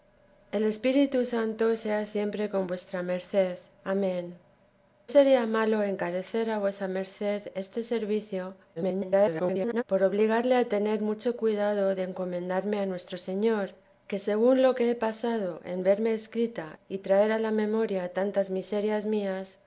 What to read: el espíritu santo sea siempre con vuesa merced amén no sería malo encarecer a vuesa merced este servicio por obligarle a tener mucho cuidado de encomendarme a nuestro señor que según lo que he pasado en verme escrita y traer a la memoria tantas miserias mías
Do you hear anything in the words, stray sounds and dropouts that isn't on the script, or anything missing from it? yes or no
yes